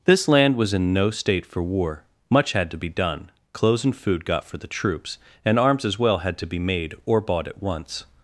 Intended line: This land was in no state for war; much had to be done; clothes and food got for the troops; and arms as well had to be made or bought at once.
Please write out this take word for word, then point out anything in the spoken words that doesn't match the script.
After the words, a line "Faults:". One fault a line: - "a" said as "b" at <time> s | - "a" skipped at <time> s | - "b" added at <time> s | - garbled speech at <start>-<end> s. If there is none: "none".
This land was in no state for war; much had to be done; clothes and food got for the troops; and arms as well had to be made or bought at once.
Faults:
none